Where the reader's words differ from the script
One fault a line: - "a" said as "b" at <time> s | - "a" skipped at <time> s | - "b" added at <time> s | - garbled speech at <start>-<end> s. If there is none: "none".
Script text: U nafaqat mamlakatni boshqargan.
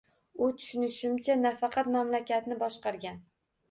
- "tushunishimcha" added at 0.6 s